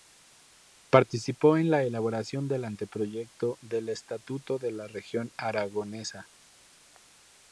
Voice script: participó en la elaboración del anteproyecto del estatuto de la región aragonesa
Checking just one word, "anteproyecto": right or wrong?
right